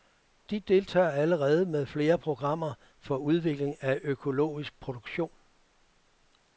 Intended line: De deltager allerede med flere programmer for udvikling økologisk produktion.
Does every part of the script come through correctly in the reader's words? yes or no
no